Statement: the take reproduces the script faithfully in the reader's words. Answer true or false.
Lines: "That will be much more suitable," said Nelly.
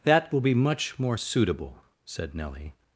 true